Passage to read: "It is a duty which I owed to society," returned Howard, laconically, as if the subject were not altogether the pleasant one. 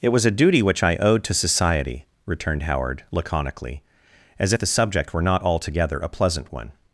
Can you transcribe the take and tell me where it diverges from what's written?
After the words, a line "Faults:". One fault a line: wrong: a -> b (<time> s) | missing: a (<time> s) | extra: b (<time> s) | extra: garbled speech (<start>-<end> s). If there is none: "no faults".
"It was a duty which I owed to society," returned Howard, laconically, as if the subject were not altogether a pleasant one.
Faults:
wrong: is -> was (0.1 s)
wrong: the -> a (6.0 s)